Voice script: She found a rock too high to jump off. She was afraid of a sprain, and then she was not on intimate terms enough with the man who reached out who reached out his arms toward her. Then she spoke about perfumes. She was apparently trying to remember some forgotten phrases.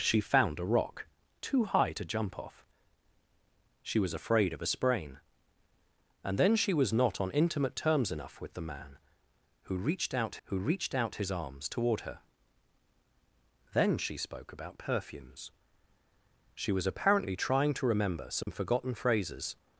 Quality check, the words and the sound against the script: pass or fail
fail